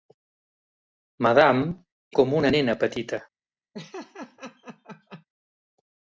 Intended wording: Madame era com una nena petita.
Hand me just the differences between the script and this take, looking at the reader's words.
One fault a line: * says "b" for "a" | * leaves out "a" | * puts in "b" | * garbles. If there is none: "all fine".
* leaves out "era"